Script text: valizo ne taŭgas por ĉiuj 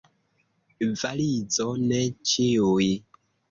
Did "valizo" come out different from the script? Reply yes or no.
no